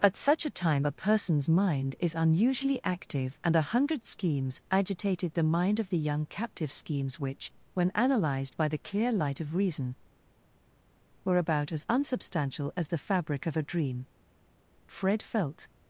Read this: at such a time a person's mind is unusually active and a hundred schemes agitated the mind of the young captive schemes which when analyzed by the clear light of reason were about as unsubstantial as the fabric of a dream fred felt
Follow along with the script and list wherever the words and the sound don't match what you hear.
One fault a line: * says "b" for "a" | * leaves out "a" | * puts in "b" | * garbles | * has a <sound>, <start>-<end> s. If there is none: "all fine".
all fine